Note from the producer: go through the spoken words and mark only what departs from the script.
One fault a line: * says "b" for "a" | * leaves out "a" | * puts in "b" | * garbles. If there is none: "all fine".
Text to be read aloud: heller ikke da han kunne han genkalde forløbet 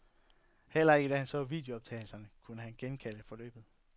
* puts in "så videooptagelserne"